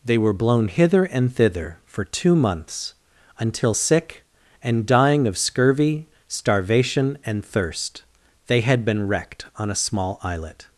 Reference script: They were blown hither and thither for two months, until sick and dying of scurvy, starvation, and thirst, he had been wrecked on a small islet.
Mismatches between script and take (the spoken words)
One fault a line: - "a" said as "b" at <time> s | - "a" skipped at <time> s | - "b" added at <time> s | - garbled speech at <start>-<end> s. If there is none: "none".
- "he" said as "they" at 8.5 s